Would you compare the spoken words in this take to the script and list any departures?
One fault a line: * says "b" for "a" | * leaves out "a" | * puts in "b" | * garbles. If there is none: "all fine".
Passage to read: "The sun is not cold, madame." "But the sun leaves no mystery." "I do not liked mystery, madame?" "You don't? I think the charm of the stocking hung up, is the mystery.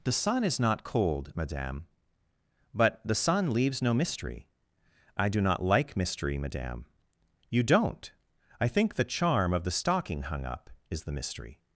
* says "like" for "liked"